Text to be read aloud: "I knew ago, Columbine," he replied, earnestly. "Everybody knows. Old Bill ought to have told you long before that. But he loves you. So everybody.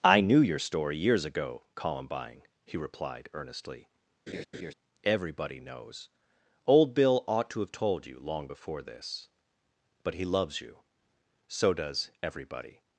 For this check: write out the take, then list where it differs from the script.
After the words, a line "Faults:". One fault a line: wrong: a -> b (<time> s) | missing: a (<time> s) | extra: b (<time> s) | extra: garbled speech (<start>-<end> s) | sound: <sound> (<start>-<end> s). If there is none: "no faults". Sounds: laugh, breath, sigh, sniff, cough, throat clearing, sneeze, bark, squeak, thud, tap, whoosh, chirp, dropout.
"I knew your story years ago, Columbine," he replied, earnestly. "Everybody knows. Old Bill ought to have told you long before this. But he loves you. So does everybody.
Faults:
extra: your story years (0.4 s)
sound: laugh (4.3-4.7 s)
wrong: that -> this (8.8 s)
extra: does (11.7 s)